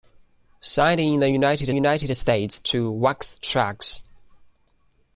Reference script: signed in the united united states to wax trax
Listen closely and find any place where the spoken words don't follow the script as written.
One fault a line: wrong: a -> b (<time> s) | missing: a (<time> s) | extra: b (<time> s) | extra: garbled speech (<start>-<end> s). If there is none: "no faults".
no faults